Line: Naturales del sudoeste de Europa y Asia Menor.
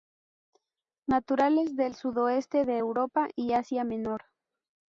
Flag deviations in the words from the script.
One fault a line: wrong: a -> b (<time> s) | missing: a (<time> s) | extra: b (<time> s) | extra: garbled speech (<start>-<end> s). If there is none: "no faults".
no faults